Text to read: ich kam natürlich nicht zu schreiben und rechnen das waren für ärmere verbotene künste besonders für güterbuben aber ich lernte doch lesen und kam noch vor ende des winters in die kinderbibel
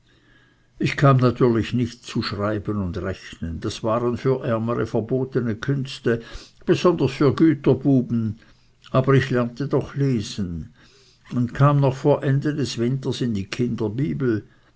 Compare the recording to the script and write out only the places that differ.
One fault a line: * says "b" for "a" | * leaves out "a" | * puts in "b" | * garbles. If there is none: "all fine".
all fine